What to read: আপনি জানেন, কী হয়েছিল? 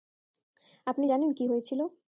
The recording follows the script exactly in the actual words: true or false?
true